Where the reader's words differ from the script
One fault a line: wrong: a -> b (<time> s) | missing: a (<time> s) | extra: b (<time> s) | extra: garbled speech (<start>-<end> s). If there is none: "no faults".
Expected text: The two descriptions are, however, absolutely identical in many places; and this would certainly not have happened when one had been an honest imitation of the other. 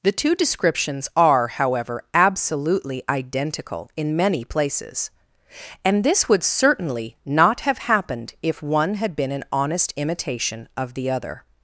wrong: when -> if (8.4 s)